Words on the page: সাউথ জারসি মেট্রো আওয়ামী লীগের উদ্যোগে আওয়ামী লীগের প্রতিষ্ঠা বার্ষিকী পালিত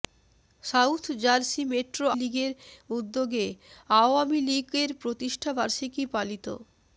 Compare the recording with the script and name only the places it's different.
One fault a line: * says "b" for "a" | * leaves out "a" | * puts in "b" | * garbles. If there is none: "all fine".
* leaves out "আওয়ামী"